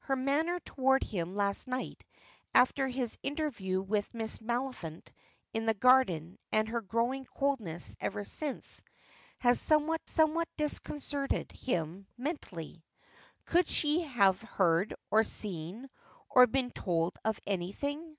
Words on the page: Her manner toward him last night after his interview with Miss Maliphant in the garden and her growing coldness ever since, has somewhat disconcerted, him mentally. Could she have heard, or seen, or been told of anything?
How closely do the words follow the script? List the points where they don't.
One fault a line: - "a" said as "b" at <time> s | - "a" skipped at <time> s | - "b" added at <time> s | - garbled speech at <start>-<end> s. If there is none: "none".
- "somewhat" added at 10.1 s